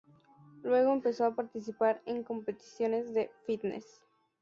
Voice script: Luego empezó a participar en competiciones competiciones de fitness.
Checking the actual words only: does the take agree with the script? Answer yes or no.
no